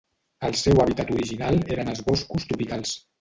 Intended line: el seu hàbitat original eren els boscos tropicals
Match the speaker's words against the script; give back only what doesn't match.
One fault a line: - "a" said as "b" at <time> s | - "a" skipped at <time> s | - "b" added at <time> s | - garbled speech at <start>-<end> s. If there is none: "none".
none